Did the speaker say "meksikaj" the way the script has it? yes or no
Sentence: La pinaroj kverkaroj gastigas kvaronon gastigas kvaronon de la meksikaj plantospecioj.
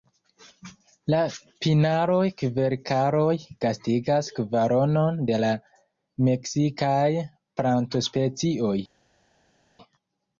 yes